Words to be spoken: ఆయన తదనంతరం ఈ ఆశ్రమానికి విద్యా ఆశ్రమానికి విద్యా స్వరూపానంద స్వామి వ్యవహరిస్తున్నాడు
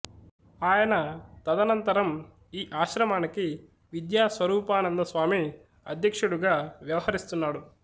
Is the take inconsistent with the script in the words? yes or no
yes